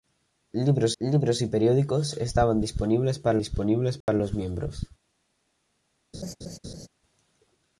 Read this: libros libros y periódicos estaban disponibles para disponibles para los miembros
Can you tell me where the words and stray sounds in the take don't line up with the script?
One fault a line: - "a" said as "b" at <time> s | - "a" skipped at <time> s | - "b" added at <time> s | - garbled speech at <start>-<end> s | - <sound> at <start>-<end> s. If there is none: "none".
- dropout at 4.0-4.1 s
- laugh at 6.1-6.9 s